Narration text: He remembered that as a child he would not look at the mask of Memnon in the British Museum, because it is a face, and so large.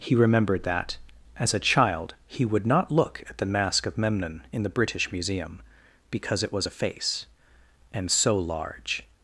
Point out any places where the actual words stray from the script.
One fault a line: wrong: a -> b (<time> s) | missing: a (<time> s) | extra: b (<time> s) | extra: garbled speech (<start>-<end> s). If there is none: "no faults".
wrong: is -> was (6.5 s)